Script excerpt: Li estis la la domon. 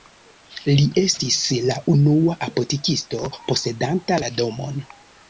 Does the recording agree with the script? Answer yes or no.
no